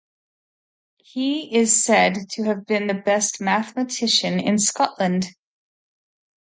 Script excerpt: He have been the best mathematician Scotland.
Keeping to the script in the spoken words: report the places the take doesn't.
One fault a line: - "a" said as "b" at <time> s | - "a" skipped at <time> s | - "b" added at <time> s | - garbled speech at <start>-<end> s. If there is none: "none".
- "is said to" added at 1.6 s
- "in" added at 4.4 s